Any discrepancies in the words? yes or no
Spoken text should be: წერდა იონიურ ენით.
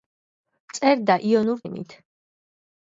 no